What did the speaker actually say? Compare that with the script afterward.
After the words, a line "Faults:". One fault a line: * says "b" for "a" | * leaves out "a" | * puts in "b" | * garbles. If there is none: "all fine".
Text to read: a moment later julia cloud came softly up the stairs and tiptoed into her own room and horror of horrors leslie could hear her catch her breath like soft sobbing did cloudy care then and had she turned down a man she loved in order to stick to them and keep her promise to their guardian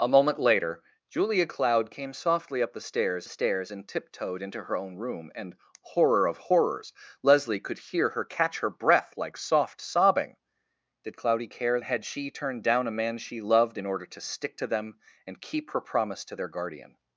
a moment later julia cloud came softly up the stairs stairs and tiptoed into her own room and horror of horrors leslie could hear her catch her breath like soft sobbing did cloudy care had she turned down a man she loved in order to stick to them and keep her promise to their guardian
Faults:
* puts in "stairs"
* leaves out "then and"